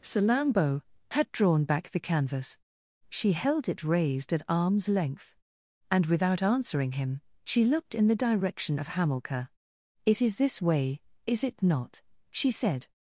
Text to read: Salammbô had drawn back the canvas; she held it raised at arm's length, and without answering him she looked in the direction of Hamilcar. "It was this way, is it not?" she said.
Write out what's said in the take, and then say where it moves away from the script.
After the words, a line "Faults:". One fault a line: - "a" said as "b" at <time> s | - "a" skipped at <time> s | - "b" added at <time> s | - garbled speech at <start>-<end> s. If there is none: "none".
Salammbô had drawn back the canvas; she held it raised at arm's length, and without answering him she looked in the direction of Hamilcar. "It is this way, is it not?" she said.
Faults:
- "was" said as "is" at 10.2 s